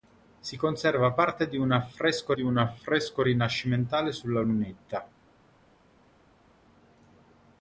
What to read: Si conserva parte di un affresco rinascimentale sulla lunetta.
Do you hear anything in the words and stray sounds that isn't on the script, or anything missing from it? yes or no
yes